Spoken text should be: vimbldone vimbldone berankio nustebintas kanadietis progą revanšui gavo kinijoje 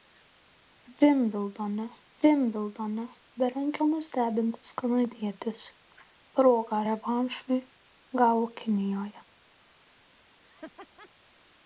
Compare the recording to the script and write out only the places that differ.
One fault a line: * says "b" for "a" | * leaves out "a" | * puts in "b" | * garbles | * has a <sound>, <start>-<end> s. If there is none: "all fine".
* has a laugh, 10.4-11.1 s